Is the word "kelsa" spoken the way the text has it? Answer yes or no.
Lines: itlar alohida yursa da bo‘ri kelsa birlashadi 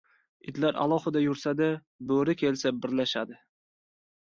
yes